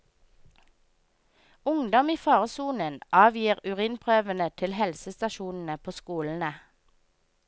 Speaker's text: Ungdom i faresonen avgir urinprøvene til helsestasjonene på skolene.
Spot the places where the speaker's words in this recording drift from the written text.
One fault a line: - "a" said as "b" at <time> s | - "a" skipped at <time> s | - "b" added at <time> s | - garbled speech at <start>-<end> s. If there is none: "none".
none